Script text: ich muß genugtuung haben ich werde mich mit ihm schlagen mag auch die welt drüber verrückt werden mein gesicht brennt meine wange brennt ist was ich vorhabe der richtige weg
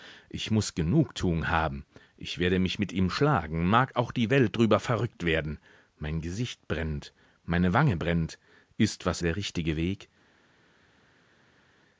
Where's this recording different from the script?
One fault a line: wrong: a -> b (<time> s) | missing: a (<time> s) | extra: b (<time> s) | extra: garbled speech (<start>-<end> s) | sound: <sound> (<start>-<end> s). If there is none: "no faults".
missing: ich vorhabe (9.2 s)